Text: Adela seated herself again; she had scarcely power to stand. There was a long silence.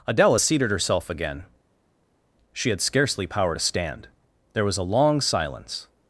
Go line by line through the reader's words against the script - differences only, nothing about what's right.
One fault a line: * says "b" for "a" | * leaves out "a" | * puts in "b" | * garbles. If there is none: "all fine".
all fine